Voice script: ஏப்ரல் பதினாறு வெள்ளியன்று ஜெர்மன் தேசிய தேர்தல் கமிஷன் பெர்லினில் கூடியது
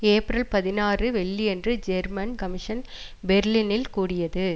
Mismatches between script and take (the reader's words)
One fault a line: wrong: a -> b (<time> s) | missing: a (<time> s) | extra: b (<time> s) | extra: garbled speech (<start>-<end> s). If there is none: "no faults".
missing: தேசிய தேர்தல் (2.3 s)